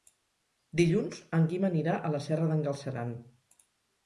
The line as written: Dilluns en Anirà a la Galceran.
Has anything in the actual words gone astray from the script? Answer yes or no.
yes